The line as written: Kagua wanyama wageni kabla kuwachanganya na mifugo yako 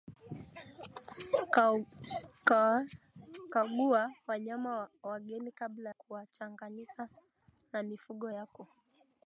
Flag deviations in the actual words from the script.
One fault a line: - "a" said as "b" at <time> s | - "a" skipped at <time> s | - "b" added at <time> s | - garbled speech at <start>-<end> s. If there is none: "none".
none